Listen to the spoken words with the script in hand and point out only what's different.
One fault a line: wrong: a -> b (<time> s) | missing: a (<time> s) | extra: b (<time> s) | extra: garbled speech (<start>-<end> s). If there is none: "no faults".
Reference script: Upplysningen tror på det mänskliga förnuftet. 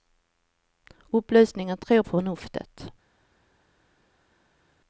missing: på det mänskliga (2.0 s)